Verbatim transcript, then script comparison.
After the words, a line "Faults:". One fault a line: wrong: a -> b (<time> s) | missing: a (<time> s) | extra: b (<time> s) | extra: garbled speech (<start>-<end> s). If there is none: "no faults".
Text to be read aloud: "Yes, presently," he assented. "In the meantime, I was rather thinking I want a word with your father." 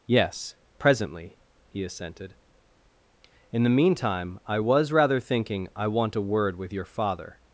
"Yes, presently," he assented. "In the meantime, I was rather thinking I want a word with your father."
Faults:
no faults